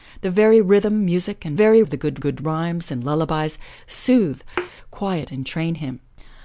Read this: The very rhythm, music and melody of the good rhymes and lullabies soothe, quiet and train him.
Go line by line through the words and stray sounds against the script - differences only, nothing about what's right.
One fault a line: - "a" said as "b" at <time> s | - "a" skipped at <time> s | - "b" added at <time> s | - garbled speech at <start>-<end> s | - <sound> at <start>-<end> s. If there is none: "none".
- "melody" said as "very" at 1.5 s
- "good" added at 2.2 s
- thud at 4.6-4.7 s